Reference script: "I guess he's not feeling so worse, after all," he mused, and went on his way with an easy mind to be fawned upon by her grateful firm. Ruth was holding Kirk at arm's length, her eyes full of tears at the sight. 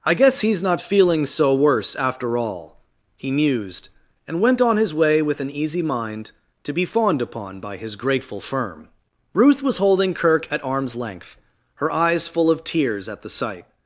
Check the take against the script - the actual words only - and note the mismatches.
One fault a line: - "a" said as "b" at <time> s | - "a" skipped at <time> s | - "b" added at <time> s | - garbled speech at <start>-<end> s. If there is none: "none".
- "her" said as "his" at 7.8 s